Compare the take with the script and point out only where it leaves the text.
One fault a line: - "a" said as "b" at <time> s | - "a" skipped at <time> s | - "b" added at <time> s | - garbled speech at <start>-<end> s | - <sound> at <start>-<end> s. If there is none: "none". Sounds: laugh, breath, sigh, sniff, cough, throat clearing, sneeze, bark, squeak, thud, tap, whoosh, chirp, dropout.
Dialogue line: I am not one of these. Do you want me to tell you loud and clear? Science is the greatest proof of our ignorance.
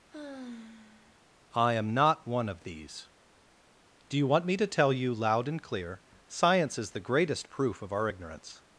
- sigh at 0.1-1.2 s